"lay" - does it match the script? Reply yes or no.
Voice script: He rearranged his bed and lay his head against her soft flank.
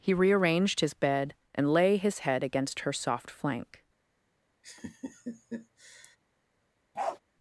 yes